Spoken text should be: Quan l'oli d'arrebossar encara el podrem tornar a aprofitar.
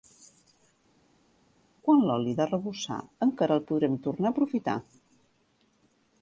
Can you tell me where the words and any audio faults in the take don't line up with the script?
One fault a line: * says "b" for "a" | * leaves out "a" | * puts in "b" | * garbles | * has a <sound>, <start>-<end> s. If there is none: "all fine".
all fine